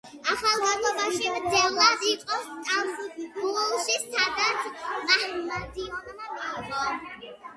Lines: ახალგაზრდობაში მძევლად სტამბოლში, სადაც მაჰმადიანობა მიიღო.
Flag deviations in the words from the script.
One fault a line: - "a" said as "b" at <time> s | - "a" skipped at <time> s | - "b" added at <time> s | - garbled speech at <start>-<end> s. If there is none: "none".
- "იყო" added at 2.1 s